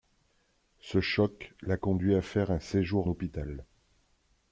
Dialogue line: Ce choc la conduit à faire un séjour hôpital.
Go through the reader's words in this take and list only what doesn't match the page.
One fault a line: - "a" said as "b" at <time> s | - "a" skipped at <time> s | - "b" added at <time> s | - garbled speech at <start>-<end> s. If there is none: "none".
none